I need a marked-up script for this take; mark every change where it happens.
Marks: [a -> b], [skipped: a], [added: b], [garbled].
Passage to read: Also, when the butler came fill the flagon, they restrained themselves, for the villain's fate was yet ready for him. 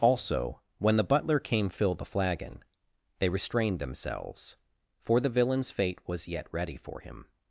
Also, when the butler came fill the flagon, they restrained themselves, for the villain's fate was yet ready for him.